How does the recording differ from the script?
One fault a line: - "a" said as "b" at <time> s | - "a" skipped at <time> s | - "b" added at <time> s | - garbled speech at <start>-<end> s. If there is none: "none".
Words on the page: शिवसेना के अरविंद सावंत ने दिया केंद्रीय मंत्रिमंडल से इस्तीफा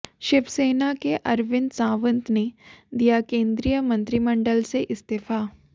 none